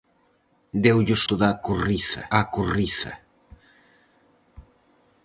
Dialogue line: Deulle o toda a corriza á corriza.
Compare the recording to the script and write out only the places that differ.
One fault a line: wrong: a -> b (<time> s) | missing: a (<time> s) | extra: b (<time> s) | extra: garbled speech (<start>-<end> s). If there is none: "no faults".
no faults